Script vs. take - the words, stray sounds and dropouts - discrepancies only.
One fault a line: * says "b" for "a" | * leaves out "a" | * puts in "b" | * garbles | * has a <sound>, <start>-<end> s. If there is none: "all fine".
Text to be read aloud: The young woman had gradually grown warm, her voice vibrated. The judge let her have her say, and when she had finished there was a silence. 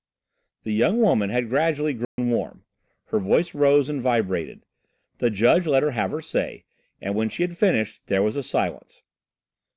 * has a dropout, 2.0-2.2 s
* puts in "rose and"